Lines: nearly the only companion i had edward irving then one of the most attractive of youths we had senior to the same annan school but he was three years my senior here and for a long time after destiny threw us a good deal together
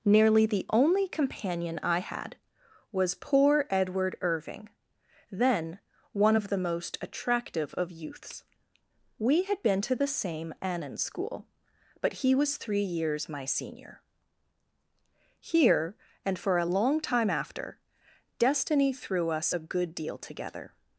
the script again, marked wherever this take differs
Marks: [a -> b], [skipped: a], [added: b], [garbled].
nearly the only companion i had [added: was poor] edward irving then one of the most attractive of youths we had [senior -> been] to the same annan school but he was three years my senior here and for a long time after destiny threw us a good deal together